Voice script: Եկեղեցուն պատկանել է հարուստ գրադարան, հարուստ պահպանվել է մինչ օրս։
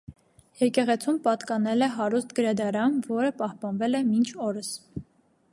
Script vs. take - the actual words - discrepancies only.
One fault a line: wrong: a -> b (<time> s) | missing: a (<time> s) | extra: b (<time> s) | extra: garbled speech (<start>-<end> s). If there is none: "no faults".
wrong: հարուստ -> որը (3.1 s)